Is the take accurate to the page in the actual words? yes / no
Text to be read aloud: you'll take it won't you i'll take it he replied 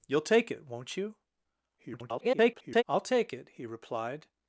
no